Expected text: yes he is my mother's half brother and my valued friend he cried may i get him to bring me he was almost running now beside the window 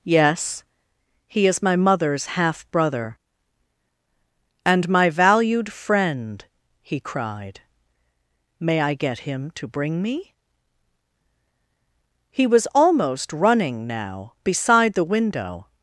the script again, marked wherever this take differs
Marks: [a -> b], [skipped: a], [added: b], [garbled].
yes he is my mother's half brother and my valued friend he cried may i get him to bring me he was almost running now beside the window